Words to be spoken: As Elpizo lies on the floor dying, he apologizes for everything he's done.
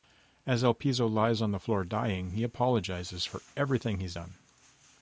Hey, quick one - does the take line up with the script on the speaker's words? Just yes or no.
yes